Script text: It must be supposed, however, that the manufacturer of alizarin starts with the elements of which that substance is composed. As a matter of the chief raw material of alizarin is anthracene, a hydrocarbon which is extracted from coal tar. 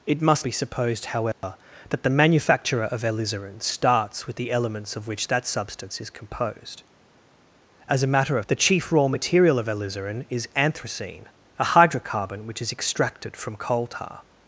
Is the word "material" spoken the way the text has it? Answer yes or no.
yes